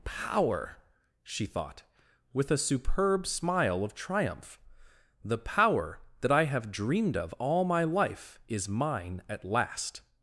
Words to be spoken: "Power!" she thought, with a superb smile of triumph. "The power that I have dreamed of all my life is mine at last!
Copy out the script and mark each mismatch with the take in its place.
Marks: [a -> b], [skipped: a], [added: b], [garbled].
"Power!" she thought, with a superb smile of triumph. "The power that I have dreamed of all my life is mine at last!